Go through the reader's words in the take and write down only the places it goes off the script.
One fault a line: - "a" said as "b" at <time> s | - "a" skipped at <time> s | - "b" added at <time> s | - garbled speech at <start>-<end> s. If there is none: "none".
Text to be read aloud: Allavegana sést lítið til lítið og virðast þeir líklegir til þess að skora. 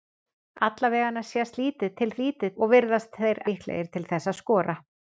none